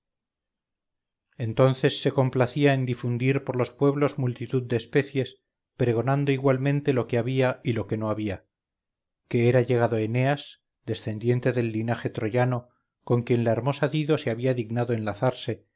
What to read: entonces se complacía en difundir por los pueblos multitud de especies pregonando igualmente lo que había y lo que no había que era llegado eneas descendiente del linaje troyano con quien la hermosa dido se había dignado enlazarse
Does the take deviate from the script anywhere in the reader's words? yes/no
no